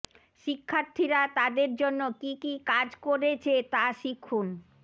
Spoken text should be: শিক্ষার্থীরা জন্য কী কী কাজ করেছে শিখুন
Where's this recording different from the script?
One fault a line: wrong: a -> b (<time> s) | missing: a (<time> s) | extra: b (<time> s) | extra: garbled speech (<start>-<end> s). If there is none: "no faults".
extra: তাদের (1.4 s)
extra: তা (3.7 s)